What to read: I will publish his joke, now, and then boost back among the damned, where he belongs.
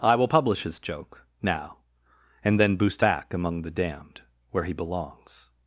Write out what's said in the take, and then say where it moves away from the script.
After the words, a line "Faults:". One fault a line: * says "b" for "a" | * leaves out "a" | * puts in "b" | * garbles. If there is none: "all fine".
I will publish his joke, now, and then boost back among the damned, where he belongs.
Faults:
all fine